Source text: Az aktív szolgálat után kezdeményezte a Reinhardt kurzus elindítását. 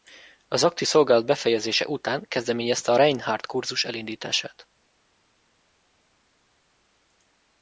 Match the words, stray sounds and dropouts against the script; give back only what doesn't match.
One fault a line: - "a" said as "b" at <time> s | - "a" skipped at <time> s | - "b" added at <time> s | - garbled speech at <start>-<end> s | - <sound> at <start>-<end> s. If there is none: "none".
- "befejezése" added at 1.2 s